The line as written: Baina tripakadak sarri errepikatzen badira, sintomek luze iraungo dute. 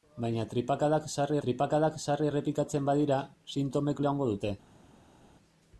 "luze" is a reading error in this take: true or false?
true